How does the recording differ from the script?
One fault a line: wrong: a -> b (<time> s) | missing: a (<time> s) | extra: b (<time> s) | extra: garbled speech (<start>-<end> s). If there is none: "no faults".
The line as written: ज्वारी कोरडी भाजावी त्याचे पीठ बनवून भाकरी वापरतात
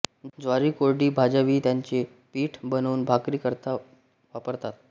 extra: करता (3.4 s)